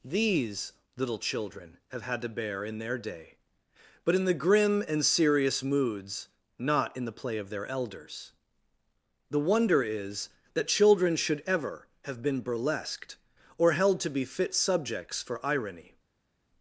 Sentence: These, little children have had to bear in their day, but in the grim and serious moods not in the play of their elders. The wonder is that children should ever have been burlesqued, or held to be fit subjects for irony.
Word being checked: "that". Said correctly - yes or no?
yes